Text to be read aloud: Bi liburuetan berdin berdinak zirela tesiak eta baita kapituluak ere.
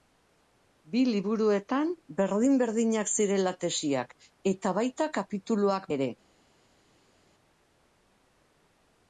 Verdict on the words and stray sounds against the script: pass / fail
pass